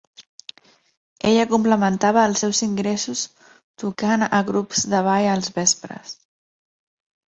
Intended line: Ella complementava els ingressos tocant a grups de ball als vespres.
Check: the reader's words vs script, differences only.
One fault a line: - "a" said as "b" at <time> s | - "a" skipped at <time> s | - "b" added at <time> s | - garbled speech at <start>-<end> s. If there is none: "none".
- "seus" added at 2.4 s